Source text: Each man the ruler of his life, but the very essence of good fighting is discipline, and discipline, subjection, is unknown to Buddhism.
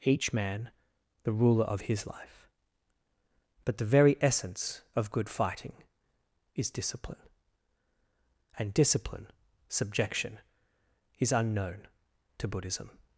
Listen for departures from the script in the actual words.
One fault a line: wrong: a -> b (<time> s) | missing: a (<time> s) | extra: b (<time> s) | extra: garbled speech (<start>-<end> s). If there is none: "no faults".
no faults